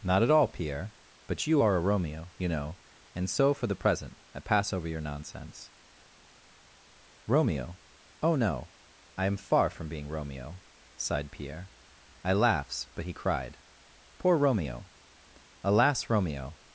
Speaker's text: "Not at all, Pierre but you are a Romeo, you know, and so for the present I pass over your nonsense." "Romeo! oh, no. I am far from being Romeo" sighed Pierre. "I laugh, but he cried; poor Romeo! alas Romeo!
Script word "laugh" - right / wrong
wrong